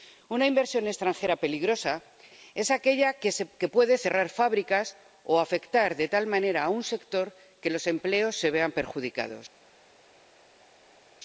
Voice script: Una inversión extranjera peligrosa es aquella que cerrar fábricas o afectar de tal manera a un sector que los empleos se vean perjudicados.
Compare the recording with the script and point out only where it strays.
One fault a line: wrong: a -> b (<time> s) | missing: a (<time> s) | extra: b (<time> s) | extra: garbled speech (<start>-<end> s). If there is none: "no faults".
extra: puede (3.7 s)